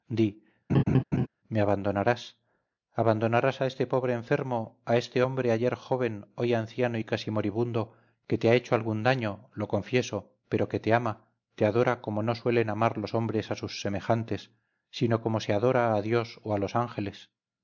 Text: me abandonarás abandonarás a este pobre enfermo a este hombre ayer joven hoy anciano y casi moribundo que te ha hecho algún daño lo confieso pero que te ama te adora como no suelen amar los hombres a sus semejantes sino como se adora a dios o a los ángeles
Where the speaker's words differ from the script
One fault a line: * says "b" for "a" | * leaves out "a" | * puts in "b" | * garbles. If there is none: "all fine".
all fine